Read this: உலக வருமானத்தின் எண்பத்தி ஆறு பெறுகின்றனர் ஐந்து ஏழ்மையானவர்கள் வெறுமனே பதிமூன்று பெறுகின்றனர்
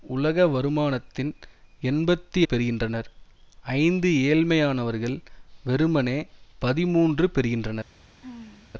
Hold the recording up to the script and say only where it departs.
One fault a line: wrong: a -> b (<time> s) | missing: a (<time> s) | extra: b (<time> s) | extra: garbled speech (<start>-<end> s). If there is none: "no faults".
missing: ஆறு (2.4 s)